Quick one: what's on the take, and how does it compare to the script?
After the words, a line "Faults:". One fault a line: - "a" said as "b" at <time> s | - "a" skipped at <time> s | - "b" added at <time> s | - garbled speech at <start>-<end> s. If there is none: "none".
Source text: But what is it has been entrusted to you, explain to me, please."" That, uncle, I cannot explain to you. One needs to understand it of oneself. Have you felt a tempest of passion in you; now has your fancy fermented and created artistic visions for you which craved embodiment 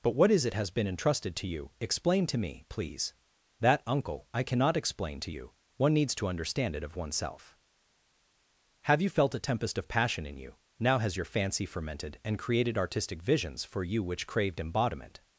But what is it has been entrusted to you, explain to me, please."" That, uncle, I cannot explain to you. One needs to understand it of oneself. Have you felt a tempest of passion in you; now has your fancy fermented and created artistic visions for you which craved embodiment
Faults:
none